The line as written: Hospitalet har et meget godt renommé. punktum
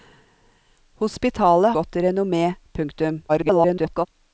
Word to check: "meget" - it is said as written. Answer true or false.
false